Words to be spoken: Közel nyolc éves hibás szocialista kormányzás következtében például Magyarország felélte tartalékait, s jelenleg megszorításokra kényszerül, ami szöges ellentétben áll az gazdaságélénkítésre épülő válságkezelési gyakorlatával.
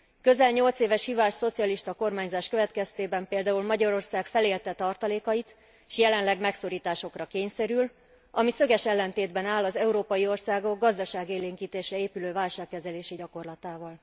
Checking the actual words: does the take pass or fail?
fail